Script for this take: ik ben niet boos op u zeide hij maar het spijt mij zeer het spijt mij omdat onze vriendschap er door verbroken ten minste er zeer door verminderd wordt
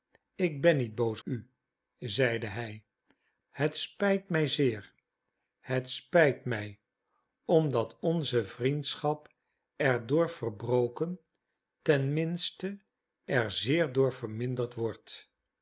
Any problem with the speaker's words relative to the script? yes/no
yes